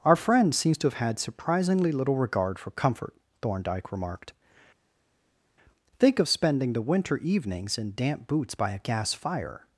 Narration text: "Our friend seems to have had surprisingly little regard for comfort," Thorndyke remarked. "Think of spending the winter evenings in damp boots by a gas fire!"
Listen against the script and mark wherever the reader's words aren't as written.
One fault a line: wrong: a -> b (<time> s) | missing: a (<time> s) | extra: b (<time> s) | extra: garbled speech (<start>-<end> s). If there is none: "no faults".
no faults